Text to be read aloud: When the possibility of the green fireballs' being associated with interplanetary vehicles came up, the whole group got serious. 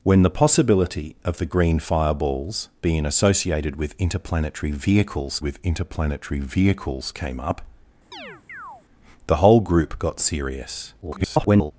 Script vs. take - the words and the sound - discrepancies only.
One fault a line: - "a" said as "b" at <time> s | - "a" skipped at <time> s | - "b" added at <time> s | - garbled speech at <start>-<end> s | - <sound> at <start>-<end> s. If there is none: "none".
- "with interplanetary vehicles" added at 5.4 s
- chirp at 8.1-8.8 s
- garbled speech at 11.0-11.7 s